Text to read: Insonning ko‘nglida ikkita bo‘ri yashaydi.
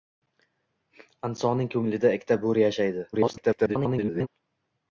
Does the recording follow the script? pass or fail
fail